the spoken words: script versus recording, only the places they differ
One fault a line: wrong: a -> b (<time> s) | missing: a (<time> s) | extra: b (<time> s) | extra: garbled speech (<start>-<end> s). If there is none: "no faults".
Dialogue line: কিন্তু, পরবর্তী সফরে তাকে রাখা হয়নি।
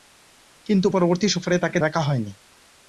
no faults